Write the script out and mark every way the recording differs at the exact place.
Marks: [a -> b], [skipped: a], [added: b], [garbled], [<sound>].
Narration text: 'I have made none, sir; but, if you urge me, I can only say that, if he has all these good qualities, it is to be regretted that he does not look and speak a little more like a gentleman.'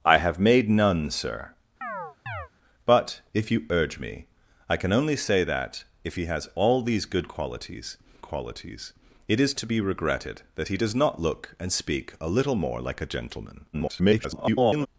'I have made none, sir; [chirp] but, if you urge me, I can only say that, if he has all these good qualities, [added: qualities] it is to be regretted that he does not look and speak a little more like a gentleman.' [garbled]